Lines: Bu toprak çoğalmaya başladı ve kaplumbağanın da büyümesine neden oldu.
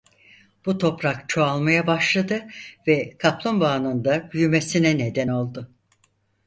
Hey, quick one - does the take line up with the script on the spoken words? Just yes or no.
yes